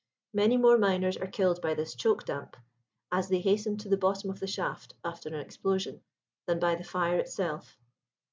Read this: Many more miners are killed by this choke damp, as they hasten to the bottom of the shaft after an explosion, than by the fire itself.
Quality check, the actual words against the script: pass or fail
pass